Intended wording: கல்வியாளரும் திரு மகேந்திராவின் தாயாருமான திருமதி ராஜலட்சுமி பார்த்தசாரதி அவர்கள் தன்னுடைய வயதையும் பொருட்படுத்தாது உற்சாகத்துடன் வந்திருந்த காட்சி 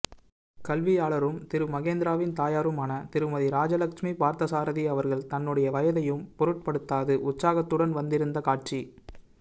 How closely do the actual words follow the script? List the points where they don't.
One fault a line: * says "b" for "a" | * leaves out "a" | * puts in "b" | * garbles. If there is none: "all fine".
all fine